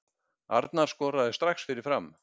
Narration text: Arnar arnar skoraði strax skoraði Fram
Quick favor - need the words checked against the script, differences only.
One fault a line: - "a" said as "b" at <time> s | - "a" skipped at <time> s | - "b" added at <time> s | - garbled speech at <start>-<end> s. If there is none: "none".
- "arnar" skipped at 0.9 s
- "skoraði" said as "fyrir" at 1.7 s